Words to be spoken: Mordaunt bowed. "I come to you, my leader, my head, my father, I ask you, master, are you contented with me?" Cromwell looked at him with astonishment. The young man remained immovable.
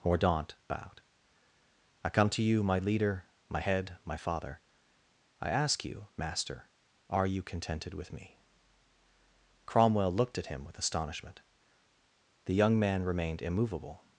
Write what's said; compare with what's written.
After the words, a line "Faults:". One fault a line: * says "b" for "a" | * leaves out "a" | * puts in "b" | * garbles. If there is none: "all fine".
Mordaunt bowed. "I come to you, my leader, my head, my father, I ask you, master, are you contented with me?" Cromwell looked at him with astonishment. The young man remained immovable.
Faults:
all fine